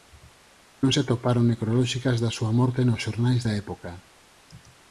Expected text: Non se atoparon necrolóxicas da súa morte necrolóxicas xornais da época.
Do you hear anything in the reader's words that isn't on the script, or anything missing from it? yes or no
yes